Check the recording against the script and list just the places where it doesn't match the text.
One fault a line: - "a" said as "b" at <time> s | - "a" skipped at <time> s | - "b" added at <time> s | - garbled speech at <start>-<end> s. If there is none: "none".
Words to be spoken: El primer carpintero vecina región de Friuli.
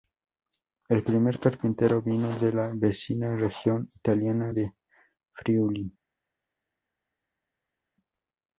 - "vino de la" added at 2.0 s
- "italiana" added at 4.0 s